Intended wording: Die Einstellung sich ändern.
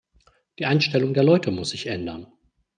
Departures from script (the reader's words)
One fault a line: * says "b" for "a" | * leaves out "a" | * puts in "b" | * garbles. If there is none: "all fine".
* puts in "der Leute muss"